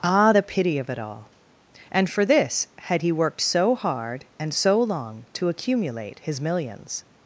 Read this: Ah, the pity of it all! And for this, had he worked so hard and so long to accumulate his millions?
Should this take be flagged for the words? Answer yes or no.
no